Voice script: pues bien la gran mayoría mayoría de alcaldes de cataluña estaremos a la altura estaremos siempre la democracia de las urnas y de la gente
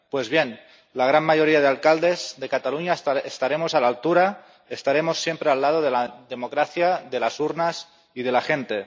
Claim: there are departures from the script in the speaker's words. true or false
true